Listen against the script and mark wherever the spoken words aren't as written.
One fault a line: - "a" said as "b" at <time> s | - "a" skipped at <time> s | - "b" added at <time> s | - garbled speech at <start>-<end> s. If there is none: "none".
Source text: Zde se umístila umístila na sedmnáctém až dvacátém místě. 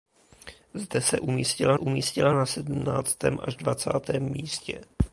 none